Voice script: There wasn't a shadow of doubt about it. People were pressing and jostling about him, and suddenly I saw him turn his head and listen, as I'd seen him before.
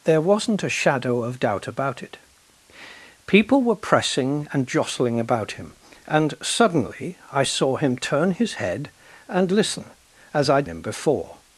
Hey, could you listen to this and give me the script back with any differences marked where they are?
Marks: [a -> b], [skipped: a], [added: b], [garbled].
There wasn't a shadow of doubt about it. People were pressing and jostling about him, and suddenly I saw him turn his head and listen, as I'd [skipped: seen] him before.